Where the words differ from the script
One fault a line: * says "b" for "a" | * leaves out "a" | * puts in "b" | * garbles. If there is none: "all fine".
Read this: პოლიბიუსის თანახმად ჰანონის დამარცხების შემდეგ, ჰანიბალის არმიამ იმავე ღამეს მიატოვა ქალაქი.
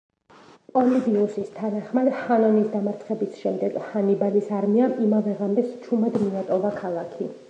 * puts in "ჩუმად"